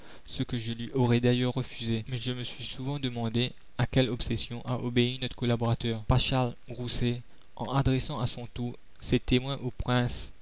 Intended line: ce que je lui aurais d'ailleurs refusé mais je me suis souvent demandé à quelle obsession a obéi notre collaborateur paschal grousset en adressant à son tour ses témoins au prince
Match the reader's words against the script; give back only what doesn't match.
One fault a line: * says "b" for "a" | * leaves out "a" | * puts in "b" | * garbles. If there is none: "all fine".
all fine